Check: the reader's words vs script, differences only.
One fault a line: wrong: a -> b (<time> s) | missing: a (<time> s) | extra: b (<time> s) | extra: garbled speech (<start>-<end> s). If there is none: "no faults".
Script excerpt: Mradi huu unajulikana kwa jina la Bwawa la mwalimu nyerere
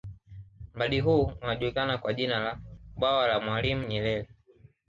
no faults